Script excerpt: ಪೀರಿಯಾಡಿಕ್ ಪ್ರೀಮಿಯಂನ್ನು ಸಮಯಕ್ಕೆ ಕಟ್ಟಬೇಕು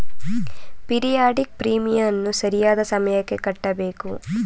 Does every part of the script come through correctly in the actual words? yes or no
no